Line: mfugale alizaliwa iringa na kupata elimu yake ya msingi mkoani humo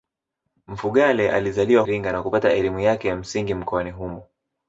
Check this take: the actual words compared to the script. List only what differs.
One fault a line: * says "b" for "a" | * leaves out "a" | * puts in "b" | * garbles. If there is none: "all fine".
all fine